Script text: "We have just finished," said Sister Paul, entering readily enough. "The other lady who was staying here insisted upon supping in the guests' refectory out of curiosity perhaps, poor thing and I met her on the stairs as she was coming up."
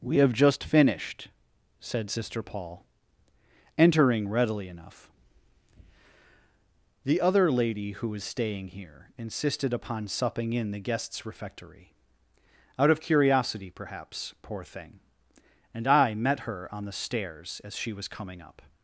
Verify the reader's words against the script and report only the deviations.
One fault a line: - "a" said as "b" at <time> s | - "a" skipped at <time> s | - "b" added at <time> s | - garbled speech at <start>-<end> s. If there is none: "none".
none